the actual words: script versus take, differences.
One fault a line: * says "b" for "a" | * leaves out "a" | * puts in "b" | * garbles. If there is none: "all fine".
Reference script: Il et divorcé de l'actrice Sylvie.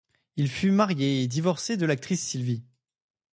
* puts in "fut marié"